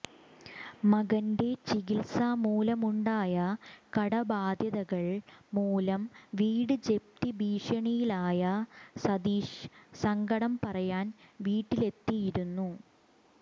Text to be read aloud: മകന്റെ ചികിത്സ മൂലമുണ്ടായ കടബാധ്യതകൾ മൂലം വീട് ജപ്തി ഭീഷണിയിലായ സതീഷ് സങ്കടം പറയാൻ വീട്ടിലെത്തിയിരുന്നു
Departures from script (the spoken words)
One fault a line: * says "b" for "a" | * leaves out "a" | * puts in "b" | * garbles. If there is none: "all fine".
all fine